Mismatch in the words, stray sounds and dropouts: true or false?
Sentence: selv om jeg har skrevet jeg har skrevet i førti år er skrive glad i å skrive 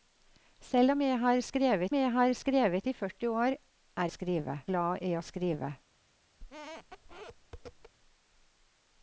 true